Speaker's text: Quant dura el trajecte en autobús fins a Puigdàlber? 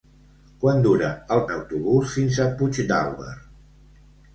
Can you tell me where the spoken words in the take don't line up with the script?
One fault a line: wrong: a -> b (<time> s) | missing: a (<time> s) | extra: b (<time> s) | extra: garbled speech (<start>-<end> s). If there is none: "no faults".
missing: trajecte (1.4 s)